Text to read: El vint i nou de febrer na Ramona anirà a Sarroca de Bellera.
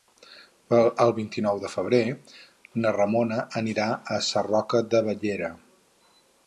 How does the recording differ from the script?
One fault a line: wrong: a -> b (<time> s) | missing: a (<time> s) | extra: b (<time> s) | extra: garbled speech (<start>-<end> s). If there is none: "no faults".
no faults